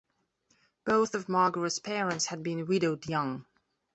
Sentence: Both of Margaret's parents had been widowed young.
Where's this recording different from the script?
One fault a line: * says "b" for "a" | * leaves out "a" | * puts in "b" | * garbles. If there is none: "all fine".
all fine